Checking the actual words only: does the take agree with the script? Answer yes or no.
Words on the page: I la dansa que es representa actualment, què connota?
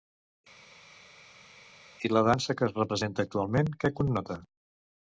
yes